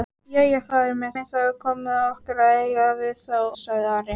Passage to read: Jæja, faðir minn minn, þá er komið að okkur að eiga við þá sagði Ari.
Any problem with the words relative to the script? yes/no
no